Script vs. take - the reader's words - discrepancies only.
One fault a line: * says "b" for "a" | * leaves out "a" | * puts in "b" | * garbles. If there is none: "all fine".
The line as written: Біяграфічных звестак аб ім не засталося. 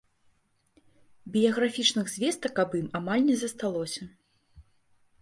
* puts in "амаль"